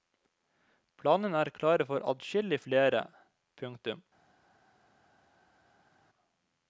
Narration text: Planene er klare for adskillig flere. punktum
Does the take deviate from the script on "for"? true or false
false